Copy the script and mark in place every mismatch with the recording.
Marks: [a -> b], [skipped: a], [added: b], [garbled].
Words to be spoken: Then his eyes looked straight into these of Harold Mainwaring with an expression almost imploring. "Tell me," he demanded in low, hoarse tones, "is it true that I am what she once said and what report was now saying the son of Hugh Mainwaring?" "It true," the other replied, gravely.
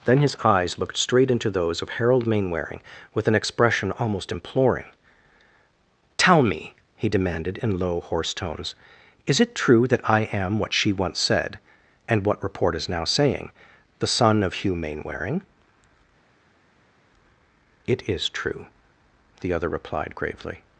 Then his eyes looked straight into [these -> those] of Harold Mainwaring with an expression almost imploring. "Tell me," he demanded in low, hoarse tones, "is it true that I am what she once said and what report [was -> is] now saying the son of Hugh Mainwaring?" "It [added: is] true," the other replied, gravely.